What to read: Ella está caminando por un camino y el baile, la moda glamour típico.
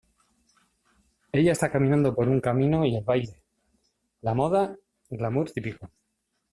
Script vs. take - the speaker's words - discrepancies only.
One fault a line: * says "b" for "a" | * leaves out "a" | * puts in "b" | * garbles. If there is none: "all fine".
all fine